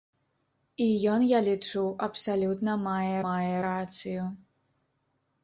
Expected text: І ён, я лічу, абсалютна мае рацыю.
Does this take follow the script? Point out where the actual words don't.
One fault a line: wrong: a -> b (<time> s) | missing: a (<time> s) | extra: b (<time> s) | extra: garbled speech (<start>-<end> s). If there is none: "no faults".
extra: мае (3.3 s)